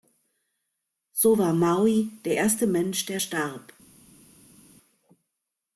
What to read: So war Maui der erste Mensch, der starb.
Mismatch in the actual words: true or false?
false